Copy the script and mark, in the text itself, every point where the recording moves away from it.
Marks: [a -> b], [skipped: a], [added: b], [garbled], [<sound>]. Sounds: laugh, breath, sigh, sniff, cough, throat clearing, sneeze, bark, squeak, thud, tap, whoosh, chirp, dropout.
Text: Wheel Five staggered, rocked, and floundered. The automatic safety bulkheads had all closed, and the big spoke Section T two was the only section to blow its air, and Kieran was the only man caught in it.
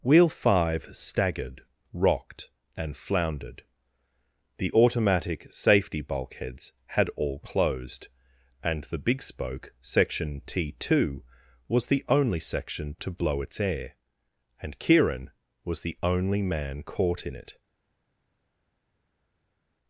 Wheel Five staggered, rocked, and floundered. The automatic safety bulkheads had all closed, and the big spoke Section T two was the only section to blow its air, and Kieran was the only man caught in it.